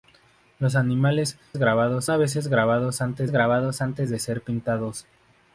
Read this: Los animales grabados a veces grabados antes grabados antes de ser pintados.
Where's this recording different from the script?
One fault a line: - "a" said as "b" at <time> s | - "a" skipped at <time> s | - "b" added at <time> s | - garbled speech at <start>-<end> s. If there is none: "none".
none